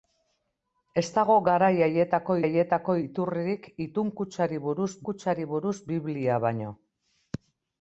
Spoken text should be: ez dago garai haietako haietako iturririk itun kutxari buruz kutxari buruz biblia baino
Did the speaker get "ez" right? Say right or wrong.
right